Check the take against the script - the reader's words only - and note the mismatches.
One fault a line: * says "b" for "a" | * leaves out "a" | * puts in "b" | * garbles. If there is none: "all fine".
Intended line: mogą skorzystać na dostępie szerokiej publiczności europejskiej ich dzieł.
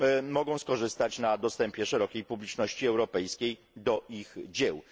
* puts in "do"